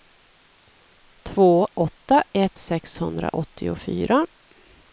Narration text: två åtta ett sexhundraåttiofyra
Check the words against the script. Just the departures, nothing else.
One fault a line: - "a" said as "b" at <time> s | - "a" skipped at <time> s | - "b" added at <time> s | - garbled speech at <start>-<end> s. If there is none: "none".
none